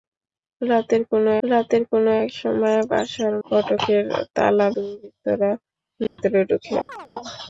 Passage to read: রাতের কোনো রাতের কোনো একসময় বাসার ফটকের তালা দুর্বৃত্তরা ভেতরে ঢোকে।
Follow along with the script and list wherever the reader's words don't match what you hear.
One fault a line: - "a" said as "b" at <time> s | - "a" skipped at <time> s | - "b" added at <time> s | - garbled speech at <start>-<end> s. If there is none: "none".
none